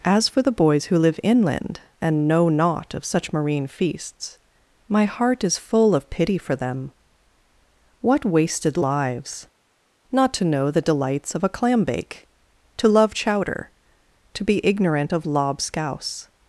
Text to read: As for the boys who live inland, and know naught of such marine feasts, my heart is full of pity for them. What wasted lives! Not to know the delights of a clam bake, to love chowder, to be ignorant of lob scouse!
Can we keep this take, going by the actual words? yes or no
yes